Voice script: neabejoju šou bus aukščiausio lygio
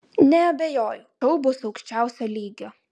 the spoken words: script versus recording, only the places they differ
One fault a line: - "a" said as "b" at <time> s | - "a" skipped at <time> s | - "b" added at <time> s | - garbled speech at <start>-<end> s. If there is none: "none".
none